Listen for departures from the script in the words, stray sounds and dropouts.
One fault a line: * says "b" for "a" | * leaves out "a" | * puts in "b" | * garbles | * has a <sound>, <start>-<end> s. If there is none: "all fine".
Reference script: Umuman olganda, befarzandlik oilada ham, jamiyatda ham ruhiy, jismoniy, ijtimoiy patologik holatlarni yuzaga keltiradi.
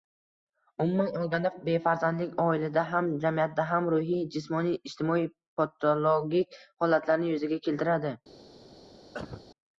* has a cough, 9.1-9.5 s